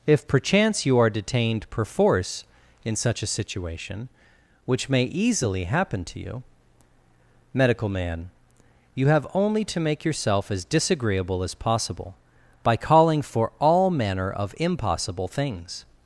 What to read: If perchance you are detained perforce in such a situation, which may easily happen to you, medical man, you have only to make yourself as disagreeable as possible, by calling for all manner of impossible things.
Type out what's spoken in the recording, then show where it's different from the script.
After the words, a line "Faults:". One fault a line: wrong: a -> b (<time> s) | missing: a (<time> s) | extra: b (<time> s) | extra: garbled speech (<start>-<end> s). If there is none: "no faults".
If perchance you are detained perforce in such a situation, which may easily happen to you, medical man, you have only to make yourself as disagreeable as possible, by calling for all manner of impossible things.
Faults:
no faults